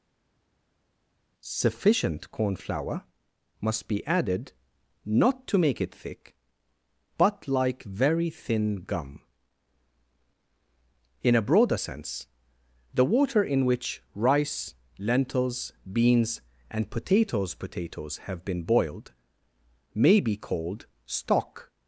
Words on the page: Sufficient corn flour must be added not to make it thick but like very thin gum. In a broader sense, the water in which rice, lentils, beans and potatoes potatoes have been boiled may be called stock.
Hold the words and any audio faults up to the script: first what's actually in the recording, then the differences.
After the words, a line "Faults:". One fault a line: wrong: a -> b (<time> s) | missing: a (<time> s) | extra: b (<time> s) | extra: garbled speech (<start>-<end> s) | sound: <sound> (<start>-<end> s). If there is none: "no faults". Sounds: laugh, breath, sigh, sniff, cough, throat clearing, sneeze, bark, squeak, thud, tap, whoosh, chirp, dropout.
Sufficient corn flour must be added not to make it thick but like very thin gum. In a broader sense, the water in which rice, lentils, beans and potatoes potatoes have been boiled may be called stock.
Faults:
no faults